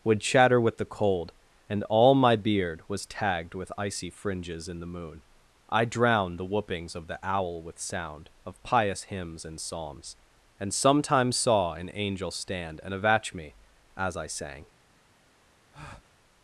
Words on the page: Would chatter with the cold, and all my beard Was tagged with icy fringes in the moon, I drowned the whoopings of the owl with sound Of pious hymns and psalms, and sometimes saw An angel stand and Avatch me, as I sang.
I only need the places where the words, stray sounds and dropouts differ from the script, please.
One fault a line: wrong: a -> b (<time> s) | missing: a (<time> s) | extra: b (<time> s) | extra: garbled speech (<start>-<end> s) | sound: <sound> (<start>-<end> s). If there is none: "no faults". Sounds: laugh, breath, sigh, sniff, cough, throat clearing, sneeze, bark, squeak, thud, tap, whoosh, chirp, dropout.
sound: breath (15.7-16.2 s)